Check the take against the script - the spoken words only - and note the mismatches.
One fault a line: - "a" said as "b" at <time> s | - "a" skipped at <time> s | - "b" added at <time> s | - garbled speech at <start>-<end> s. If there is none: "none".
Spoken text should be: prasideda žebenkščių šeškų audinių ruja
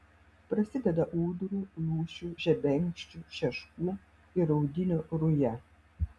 - "ūdrų lūšių" added at 1.2 s
- "ir" added at 4.4 s